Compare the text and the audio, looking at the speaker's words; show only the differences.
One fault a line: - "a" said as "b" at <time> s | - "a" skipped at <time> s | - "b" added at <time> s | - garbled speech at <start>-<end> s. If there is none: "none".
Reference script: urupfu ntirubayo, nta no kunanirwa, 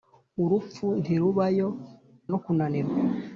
- "nta" skipped at 1.7 s